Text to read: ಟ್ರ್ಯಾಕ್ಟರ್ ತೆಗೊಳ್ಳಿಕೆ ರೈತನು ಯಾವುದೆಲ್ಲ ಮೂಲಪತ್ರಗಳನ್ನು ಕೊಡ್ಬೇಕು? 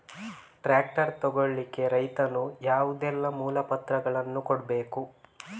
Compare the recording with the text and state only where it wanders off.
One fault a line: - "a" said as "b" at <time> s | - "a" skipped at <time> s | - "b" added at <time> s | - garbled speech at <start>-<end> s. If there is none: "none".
none